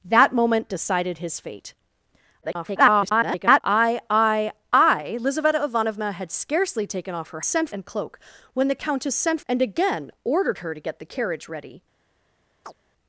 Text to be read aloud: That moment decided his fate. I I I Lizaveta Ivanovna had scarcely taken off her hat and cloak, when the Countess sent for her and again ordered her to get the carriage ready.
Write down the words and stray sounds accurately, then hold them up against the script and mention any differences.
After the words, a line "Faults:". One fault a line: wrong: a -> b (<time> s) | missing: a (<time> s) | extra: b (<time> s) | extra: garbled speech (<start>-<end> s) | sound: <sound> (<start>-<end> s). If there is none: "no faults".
That moment decided his fate. [garbled] I I I Lizaveta Ivanovna had scarcely taken off her sent and cloak, when the Countess sent and again ordered her to get the carriage ready.
Faults:
extra: garbled speech (2.4-3.6 s)
wrong: hat -> sent (7.4 s)
missing: for her (9.4 s)
sound: chirp (12.6-12.7 s)